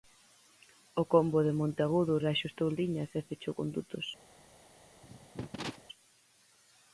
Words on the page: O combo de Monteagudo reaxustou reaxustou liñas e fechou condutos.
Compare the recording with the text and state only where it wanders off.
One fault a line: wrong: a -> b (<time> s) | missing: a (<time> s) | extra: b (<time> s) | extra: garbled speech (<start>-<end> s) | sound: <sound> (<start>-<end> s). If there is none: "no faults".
missing: reaxustou (2.7 s)
sound: cough (5.0-5.8 s)